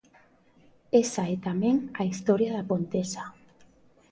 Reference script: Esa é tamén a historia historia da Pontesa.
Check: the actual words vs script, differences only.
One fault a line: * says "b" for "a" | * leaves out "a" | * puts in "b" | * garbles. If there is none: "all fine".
* leaves out "historia"